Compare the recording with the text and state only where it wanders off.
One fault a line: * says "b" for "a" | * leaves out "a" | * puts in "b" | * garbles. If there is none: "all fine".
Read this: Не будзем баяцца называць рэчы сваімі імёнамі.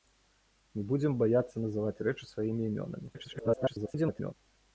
* garbles